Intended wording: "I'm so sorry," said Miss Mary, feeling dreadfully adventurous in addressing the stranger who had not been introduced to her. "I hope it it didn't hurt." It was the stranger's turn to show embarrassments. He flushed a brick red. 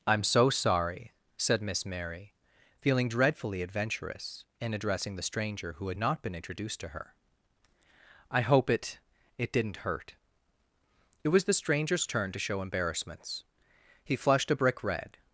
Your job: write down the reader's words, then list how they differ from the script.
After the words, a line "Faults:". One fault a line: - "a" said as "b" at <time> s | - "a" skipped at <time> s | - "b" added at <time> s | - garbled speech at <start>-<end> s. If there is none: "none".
"I'm so sorry," said Miss Mary, feeling dreadfully adventurous in addressing the stranger who had not been introduced to her. "I hope it it didn't hurt." It was the stranger's turn to show embarrassments. He flushed a brick red.
Faults:
none